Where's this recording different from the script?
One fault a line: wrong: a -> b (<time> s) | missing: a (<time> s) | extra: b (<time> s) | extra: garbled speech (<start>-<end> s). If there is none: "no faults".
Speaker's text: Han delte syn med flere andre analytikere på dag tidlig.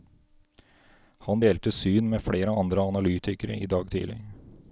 wrong: på -> i (3.6 s)